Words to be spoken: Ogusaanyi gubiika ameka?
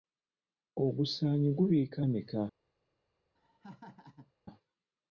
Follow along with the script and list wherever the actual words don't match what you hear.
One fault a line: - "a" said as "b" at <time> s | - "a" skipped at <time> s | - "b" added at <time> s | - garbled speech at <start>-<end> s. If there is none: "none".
none